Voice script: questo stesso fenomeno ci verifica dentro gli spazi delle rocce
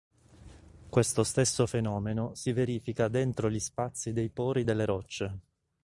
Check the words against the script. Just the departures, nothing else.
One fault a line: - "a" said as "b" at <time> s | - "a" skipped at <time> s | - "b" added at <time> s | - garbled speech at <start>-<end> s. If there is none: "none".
- "ci" said as "si" at 2.3 s
- "dei pori" added at 4.1 s